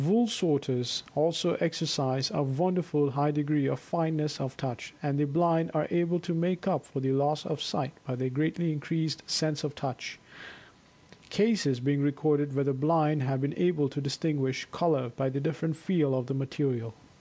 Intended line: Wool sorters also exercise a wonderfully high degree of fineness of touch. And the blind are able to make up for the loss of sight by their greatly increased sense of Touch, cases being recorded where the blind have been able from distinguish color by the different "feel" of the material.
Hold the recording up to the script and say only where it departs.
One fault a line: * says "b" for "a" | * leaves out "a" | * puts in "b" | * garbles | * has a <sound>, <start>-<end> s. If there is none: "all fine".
* says "to" for "from"